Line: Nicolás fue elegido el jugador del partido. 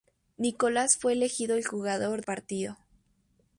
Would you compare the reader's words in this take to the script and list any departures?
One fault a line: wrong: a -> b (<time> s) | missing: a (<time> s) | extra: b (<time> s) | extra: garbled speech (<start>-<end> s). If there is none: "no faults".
missing: del (2.2 s)